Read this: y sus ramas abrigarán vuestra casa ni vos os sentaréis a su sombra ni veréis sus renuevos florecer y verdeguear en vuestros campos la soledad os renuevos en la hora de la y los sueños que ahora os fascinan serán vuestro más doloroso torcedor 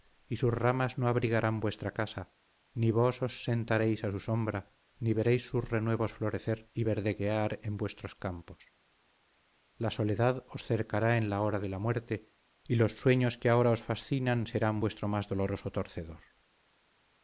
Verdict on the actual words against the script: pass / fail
fail